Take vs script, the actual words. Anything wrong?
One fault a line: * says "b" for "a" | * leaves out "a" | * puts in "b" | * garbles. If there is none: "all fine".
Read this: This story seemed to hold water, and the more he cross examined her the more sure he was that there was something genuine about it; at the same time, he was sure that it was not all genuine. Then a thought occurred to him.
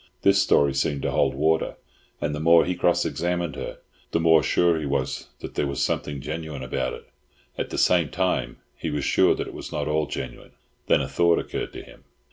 all fine